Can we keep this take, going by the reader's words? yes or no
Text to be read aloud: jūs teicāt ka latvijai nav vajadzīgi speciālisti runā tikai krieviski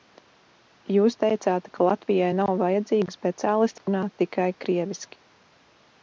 yes